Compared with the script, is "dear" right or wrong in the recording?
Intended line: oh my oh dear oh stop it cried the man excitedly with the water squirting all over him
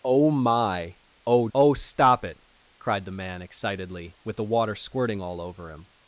wrong